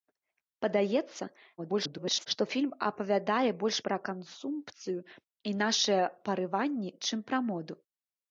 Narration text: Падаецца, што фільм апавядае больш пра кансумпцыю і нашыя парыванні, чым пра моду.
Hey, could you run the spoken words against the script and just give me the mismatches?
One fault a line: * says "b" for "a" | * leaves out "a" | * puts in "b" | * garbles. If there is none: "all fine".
* garbles